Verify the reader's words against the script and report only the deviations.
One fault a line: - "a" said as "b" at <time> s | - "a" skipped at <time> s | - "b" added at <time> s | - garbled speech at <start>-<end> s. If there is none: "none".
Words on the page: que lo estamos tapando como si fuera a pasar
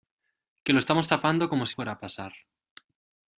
none